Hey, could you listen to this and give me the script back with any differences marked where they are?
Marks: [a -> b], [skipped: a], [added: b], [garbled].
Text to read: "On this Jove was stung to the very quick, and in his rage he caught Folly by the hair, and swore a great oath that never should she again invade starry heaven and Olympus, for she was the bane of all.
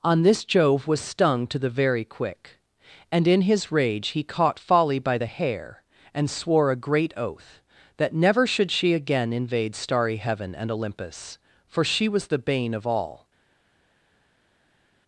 "On this Jove was stung to the very quick, and in his rage he caught Folly by the hair, and swore a great oath that never should she again invade starry heaven and Olympus, for she was the bane of all.